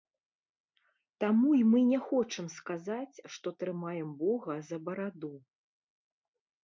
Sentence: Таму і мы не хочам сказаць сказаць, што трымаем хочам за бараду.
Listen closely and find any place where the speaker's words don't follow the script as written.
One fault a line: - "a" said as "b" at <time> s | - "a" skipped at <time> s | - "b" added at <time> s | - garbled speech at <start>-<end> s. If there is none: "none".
- "сказаць" skipped at 3.2 s
- "хочам" said as "бога" at 4.2 s